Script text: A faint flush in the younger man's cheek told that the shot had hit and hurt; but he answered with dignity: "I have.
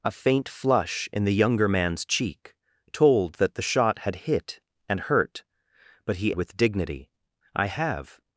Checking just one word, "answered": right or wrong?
wrong